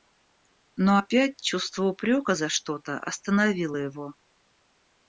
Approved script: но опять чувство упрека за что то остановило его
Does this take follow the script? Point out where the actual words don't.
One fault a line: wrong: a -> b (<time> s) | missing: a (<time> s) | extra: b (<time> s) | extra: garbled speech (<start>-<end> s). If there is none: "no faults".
no faults